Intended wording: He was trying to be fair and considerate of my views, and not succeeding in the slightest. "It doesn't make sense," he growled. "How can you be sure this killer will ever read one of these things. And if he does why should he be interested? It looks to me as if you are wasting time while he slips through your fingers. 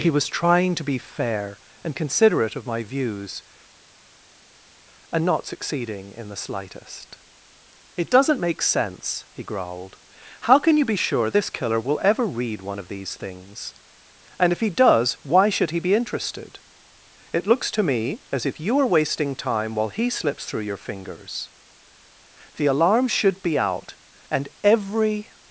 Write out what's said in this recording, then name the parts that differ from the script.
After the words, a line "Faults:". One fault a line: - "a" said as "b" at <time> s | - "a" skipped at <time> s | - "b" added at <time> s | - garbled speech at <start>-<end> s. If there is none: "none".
He was trying to be fair and considerate of my views, and not succeeding in the slightest. "It doesn't make sense," he growled. "How can you be sure this killer will ever read one of these things. And if he does why should he be interested? It looks to me as if you are wasting time while he slips through your fingers. The alarm should be out and every
Faults:
- "The alarm should be out and every" added at 22.6 s